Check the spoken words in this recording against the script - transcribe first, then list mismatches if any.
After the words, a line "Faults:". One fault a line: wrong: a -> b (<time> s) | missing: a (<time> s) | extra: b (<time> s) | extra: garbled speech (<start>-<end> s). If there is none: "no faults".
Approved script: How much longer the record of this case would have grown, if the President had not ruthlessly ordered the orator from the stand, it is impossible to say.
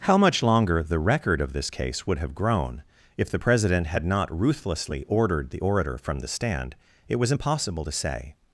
How much longer the record of this case would have grown, if the President had not ruthlessly ordered the orator from the stand, it was impossible to say.
Faults:
wrong: is -> was (7.2 s)